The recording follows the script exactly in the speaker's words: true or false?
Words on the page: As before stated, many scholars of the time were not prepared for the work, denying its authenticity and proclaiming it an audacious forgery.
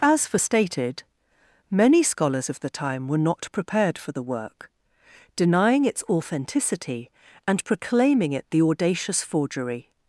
false